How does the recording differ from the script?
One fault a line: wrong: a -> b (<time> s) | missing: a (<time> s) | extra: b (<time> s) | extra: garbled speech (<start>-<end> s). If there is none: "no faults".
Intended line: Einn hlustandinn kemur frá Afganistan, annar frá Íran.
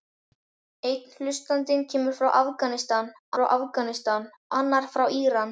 extra: frá Afganistan (3.4 s)